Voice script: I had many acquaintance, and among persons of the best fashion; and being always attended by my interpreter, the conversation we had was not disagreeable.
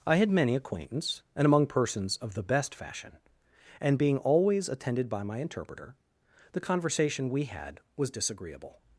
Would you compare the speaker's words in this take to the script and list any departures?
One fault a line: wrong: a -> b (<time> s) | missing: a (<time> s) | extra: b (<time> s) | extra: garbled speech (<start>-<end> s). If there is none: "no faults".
missing: not (8.1 s)